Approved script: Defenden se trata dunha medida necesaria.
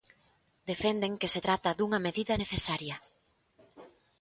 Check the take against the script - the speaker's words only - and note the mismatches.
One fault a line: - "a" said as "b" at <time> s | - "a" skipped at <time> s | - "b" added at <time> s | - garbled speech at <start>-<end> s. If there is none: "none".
- "que" added at 1.2 s